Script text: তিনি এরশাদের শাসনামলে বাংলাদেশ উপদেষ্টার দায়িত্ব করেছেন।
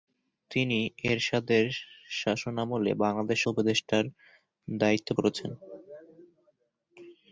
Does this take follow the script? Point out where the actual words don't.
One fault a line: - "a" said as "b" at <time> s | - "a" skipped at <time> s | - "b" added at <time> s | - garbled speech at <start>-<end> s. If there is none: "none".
none